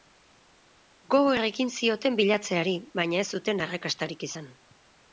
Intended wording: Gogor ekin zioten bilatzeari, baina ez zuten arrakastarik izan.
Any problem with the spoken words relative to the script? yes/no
no